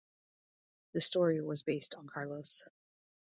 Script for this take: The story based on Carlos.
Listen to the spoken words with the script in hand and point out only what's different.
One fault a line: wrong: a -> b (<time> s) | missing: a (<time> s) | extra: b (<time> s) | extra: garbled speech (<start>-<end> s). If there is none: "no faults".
extra: was (1.4 s)